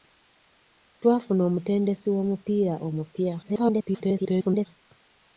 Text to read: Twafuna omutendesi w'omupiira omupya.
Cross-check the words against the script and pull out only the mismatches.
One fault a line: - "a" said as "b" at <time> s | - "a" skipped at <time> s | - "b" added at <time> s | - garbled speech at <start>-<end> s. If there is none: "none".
- garbled speech at 3.4-4.7 s